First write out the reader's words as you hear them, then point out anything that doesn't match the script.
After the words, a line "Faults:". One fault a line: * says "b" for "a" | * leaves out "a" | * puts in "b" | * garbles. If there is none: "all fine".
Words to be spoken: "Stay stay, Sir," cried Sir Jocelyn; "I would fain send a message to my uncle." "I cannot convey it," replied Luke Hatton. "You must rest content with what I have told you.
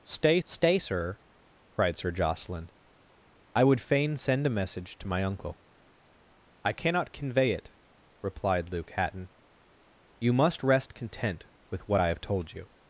"Stay stay, Sir," cried Sir Jocelyn; "I would fain send a message to my uncle." "I cannot convey it," replied Luke Hatton. "You must rest content with what I have told you.
Faults:
all fine